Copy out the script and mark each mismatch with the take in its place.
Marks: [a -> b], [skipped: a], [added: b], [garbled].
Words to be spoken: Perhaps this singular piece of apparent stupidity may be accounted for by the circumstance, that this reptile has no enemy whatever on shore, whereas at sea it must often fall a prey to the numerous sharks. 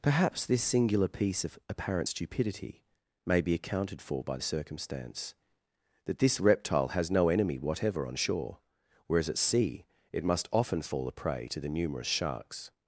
Perhaps this singular piece of apparent stupidity may be accounted for by [skipped: the] circumstance, that this reptile has no enemy whatever on shore, whereas at sea it must often fall a prey to the numerous sharks.